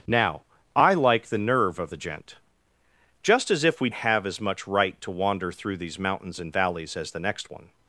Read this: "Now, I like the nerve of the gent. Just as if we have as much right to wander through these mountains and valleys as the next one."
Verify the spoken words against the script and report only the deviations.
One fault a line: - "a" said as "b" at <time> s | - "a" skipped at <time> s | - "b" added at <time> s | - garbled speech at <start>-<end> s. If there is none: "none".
none